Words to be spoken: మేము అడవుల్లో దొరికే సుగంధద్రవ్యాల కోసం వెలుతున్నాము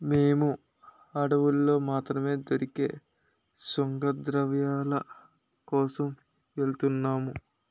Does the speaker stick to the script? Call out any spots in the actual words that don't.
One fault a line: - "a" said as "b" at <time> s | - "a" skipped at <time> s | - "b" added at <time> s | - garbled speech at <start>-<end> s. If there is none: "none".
- "మాత్రమే" added at 1.9 s